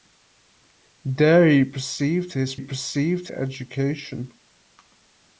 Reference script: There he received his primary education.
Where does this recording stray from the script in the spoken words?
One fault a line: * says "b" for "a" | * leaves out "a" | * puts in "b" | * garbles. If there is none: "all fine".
* says "received" for "primary"